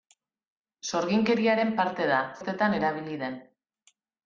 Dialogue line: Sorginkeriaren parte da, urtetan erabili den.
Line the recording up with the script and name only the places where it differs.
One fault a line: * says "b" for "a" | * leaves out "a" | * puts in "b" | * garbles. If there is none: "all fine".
all fine